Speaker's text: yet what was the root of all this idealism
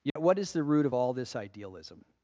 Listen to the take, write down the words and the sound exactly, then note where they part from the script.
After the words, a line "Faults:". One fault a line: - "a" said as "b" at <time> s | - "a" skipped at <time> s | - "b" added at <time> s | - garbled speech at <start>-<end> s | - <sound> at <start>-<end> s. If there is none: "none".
yet what is the root of all this idealism
Faults:
- dropout at 0.1-0.2 s
- "was" said as "is" at 0.4 s